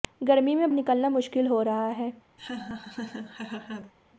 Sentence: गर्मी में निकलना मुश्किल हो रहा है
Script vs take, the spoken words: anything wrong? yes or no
no